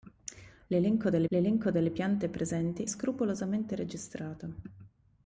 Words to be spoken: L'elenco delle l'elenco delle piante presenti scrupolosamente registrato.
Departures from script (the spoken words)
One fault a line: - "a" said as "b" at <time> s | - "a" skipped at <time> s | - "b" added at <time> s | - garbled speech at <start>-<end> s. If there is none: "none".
none